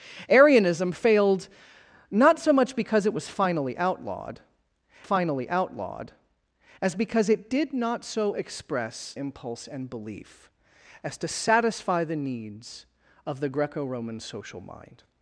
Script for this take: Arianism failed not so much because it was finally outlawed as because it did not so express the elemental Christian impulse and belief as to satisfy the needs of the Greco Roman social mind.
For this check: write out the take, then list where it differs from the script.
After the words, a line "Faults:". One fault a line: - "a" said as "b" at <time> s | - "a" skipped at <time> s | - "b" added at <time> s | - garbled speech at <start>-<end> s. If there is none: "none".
Arianism failed not so much because it was finally outlawed finally outlawed as because it did not so express impulse and belief as to satisfy the needs of the Greco Roman social mind.
Faults:
- "finally outlawed" added at 5.0 s
- "the elemental Christian" skipped at 9.1 s